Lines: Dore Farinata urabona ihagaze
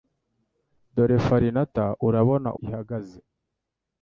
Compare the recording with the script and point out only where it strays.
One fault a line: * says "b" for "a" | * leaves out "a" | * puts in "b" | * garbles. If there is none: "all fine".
all fine